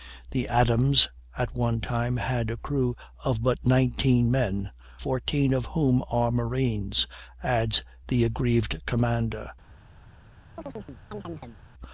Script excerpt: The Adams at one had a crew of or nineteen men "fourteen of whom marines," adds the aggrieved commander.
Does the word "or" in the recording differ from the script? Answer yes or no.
yes